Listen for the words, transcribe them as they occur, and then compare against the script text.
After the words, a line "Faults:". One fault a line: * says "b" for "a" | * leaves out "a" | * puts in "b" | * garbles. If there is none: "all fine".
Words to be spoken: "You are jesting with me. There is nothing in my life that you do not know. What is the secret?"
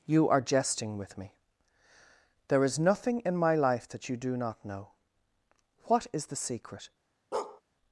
"You are jesting with me. There is nothing in my life that you do not know. What is the secret?"
Faults:
all fine